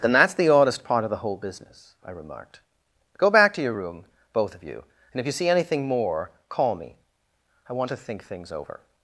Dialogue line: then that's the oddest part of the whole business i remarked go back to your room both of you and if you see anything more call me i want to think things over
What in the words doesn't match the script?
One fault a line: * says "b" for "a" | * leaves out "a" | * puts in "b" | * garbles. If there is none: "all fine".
all fine